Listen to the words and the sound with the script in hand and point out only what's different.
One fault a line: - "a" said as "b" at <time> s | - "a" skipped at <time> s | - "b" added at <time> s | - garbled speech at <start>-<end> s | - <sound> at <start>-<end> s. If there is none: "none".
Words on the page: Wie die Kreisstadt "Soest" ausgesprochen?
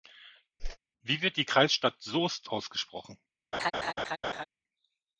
- whoosh at 0.6-0.8 s
- "wird" added at 1.2 s
- laugh at 3.5-4.4 s